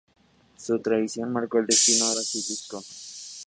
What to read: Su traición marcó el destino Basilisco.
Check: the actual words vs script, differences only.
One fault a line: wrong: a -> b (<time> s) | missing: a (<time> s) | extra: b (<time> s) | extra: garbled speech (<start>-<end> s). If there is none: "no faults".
no faults